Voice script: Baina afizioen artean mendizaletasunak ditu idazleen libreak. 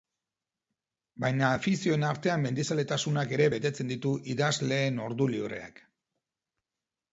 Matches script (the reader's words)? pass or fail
fail